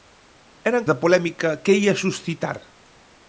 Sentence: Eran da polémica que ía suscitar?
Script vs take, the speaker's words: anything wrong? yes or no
no